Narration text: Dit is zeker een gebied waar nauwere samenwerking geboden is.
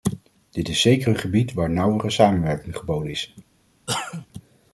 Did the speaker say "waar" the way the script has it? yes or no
yes